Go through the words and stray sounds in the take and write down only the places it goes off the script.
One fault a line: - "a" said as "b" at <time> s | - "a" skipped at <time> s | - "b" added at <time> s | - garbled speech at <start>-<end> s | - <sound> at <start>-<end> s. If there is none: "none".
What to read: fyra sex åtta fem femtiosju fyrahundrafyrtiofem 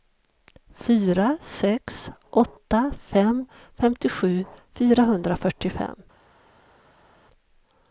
none